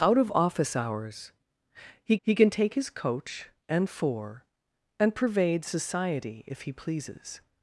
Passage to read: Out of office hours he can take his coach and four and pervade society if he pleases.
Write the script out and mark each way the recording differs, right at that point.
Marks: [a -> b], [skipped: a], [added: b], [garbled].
Out of office hours he [added: he] can take his coach and four and pervade society if he pleases.